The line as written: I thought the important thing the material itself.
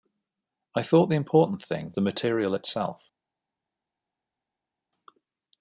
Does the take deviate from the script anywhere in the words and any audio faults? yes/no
no